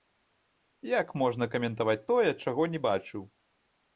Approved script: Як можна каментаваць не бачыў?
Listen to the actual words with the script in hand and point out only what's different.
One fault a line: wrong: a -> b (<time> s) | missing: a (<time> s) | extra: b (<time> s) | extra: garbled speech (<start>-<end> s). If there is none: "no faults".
extra: тое чаго (2.1 s)